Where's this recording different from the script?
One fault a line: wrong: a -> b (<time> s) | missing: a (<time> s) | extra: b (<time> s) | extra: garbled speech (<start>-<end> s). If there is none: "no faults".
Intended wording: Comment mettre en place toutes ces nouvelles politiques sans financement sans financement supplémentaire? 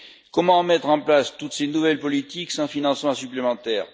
missing: sans financement (3.1 s)